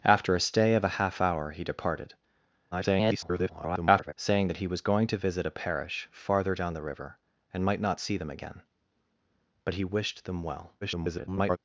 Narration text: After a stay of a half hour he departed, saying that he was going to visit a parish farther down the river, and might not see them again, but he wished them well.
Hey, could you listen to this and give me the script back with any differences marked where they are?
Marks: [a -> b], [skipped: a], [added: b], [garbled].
After a stay of a half hour he departed, [garbled] saying that he was going to visit a parish farther down the river, and might not see them again, but he wished them well. [garbled]